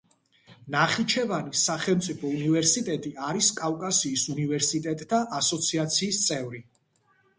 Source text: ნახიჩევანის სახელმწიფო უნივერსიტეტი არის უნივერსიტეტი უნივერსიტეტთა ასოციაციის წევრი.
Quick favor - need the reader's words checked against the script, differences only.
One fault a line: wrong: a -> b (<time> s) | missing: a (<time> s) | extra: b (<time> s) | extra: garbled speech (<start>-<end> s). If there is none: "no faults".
wrong: უნივერსიტეტი -> კავკასიის (3.6 s)